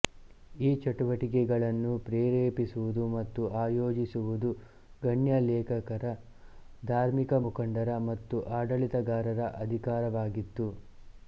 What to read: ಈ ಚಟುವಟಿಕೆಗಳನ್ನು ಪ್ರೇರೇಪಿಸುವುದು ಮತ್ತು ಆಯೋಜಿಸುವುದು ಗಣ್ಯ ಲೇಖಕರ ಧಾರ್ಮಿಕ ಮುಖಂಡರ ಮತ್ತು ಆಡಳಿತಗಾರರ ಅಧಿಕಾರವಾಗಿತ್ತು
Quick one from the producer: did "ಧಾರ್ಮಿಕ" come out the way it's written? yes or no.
yes